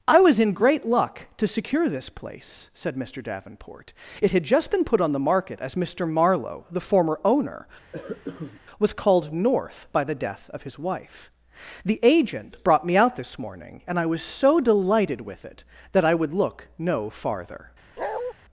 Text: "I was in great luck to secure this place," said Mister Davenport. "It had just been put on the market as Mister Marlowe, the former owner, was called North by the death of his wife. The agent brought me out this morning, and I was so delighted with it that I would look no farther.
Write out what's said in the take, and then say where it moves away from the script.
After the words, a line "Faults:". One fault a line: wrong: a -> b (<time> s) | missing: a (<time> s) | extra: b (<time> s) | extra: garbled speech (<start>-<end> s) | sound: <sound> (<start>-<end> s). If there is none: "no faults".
"I was in great luck to secure this place," said Mister Davenport. "It had just been put on the market as Mister Marlowe, the former owner, was called North by the death of his wife. The agent brought me out this morning, and I was so delighted with it that I would look no farther.
Faults:
sound: cough (7.9-8.6 s)
sound: bark (18.0-18.3 s)